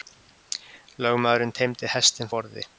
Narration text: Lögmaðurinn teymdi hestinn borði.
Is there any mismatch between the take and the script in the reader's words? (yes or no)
no